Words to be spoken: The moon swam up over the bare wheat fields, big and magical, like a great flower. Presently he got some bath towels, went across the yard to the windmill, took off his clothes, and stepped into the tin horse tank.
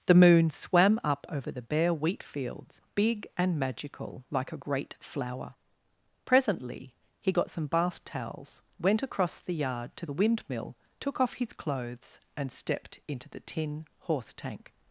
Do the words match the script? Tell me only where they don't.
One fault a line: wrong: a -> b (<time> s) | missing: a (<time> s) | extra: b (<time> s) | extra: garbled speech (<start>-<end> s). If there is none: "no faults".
no faults